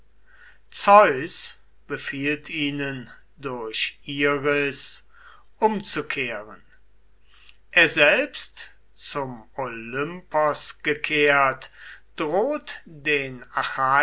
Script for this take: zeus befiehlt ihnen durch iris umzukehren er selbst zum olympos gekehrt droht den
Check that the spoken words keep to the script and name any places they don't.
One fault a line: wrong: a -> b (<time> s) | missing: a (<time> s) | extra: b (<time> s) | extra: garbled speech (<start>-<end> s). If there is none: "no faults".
no faults